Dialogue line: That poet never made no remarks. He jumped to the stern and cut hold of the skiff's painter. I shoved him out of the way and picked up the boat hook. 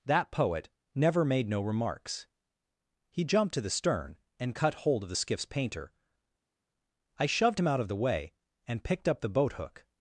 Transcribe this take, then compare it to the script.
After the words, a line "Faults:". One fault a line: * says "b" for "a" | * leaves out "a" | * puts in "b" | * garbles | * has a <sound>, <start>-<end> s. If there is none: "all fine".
That poet never made no remarks. He jumped to the stern and cut hold of the skiff's painter. I shoved him out of the way and picked up the boat hook.
Faults:
all fine